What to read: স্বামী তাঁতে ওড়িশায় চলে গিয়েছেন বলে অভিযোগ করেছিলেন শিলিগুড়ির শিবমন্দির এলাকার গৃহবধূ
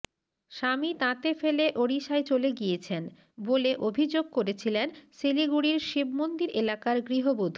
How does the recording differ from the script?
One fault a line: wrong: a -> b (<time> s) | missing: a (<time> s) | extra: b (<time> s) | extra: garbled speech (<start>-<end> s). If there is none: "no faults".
extra: ফেলে (1.3 s)